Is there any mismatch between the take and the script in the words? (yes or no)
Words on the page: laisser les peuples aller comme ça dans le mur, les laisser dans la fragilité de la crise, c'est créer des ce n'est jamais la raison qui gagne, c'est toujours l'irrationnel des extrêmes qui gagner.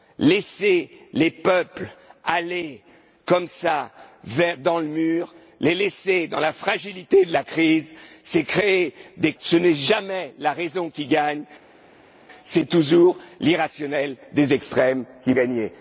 no